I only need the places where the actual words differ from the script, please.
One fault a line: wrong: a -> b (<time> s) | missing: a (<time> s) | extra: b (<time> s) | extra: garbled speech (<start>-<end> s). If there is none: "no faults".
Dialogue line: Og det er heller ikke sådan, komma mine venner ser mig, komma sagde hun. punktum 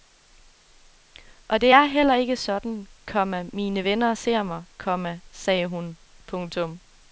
no faults